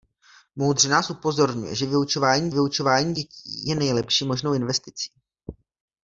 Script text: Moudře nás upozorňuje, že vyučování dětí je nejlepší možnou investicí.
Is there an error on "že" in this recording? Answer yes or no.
no